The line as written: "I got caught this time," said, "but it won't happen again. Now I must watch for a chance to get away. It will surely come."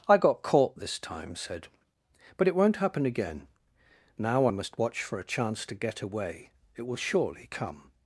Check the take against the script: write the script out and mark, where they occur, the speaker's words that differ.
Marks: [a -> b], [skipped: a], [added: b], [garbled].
"I got caught this time," said, "but it won't happen again. Now I must watch for a chance to get away. It will surely come."